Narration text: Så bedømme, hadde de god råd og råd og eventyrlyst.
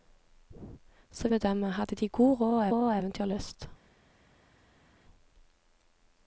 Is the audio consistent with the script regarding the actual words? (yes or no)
yes